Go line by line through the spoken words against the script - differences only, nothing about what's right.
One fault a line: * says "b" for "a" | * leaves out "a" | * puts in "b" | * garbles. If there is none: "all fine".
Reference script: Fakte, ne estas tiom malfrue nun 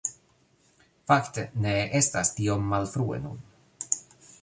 all fine